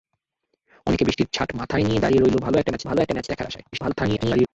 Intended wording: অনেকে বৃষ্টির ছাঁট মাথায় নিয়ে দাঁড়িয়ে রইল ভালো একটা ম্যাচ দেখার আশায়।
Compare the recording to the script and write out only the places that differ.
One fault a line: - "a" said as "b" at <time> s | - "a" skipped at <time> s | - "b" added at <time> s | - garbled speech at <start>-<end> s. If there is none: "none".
- "ভালো একটা ম্যাচ" added at 2.8 s
- garbled speech at 3.7-4.5 s